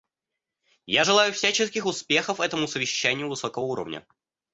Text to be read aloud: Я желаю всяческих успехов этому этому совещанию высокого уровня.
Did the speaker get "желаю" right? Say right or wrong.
right